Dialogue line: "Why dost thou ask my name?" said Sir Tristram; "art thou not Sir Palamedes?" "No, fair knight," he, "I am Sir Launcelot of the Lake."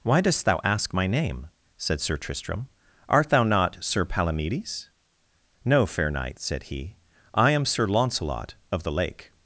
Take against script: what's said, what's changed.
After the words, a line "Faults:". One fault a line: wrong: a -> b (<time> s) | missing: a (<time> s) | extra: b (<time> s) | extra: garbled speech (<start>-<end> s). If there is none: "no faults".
"Why dost thou ask my name?" said Sir Tristram; "art thou not Sir Palamedes?" "No, fair knight," said he, "I am Sir Launcelot of the Lake."
Faults:
extra: said (6.4 s)